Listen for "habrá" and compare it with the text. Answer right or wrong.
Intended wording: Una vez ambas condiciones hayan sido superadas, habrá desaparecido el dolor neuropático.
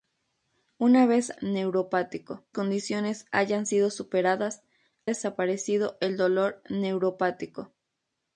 wrong